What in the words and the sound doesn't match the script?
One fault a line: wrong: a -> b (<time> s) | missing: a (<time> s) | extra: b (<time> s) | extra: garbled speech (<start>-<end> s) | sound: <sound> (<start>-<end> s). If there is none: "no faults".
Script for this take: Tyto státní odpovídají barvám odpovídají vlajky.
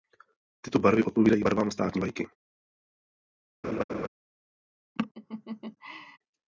wrong: státní -> barvy (0.8 s)
wrong: odpovídají -> státní (1.7 s)
sound: laugh (3.6-4.1 s)
sound: laugh (5.0-6.2 s)